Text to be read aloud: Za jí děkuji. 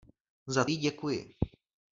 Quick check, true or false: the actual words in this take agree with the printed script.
true